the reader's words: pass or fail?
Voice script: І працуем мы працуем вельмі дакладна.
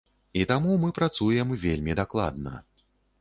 fail